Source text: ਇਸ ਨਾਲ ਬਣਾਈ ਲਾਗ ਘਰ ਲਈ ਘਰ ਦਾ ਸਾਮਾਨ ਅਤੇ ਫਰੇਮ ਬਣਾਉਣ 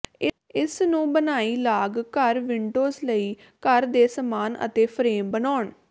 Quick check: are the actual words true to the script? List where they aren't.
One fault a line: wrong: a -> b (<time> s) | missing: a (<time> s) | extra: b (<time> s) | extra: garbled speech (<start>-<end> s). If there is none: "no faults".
wrong: ਨਾਲ -> ਨੂੰ (0.8 s)
extra: ਵਿੰਡੋਜ਼ (2.4 s)
wrong: ਦਾ -> ਦੇ (3.9 s)